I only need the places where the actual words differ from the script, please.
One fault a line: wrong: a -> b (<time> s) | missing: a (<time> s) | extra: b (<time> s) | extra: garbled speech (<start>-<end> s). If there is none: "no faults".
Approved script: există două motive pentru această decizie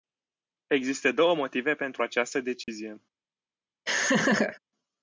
no faults